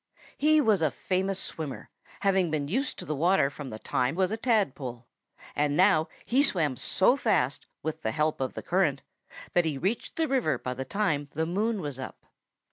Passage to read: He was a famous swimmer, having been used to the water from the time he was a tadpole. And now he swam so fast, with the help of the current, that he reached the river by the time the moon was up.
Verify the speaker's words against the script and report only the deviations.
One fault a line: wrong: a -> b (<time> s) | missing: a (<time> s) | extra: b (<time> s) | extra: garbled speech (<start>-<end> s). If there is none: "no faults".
missing: he (4.2 s)